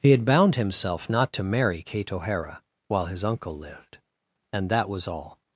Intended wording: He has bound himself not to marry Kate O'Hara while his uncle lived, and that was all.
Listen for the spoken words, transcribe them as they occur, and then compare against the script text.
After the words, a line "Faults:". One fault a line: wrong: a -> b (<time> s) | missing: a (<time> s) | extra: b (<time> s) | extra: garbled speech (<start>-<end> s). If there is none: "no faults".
He had bound himself not to marry Kate O'Hara while his uncle lived, and that was all.
Faults:
wrong: has -> had (0.1 s)